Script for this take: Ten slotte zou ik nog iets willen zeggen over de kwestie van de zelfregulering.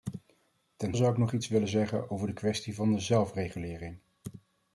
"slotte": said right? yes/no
no